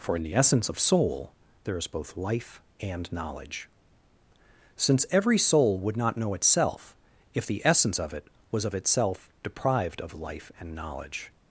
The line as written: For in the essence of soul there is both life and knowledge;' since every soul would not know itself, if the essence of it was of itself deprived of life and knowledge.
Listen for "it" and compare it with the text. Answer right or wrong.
right